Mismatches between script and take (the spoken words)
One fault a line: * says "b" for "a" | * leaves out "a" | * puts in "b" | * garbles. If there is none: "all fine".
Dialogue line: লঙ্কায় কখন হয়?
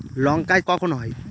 all fine